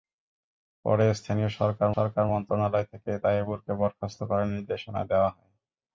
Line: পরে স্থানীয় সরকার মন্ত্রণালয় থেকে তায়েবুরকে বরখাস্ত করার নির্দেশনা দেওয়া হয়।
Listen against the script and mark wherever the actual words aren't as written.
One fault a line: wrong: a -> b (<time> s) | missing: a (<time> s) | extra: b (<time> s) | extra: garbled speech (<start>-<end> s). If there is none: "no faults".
extra: সরকার (1.9 s)